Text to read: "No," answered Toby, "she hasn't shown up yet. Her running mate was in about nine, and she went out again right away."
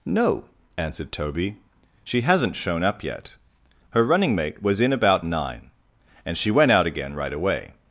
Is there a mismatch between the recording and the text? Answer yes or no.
no